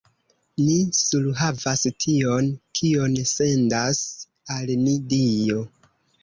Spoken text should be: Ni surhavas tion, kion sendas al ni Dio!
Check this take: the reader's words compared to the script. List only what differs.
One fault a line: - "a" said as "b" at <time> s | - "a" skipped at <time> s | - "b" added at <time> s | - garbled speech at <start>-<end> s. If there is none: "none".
none